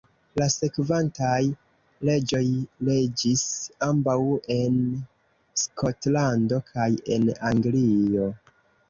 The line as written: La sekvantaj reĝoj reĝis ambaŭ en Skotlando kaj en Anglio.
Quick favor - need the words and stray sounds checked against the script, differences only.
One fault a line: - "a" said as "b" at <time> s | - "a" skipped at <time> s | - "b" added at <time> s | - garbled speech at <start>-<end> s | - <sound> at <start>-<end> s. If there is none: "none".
none